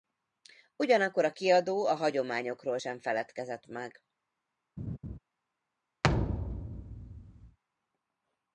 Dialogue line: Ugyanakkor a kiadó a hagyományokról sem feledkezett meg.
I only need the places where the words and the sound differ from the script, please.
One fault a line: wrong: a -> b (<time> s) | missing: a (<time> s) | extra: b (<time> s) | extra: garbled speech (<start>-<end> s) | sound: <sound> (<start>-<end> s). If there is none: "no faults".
sound: laugh (4.8-5.2 s)
sound: thud (6.0-7.6 s)